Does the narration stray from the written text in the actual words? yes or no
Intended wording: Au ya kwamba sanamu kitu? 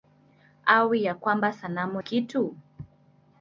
no